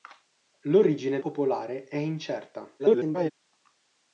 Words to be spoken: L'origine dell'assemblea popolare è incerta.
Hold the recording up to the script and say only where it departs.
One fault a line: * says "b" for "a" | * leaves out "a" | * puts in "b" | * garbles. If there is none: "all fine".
* leaves out "dell'assemblea"
* garbles